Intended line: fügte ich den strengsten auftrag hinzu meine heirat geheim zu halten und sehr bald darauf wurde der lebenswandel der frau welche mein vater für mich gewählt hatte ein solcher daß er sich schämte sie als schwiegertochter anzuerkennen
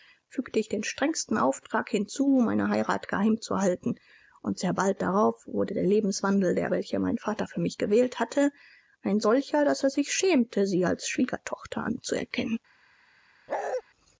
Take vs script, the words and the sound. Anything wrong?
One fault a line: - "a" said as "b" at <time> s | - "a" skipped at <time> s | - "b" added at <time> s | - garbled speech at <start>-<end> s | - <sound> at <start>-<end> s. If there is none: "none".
- "frau" skipped at 6.7 s
- bark at 13.5-13.8 s